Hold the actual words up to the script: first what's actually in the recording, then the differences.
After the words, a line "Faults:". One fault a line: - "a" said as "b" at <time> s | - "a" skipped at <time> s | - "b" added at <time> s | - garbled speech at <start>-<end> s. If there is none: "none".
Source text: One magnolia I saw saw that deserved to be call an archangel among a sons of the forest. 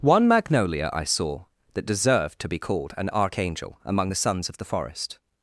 One magnolia I saw that deserved to be called an archangel among the sons of the forest.
Faults:
- "saw" skipped at 1.4 s
- "call" said as "called" at 2.6 s
- "a" said as "the" at 4.1 s